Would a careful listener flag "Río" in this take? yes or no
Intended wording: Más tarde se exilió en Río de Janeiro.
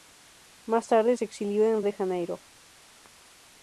yes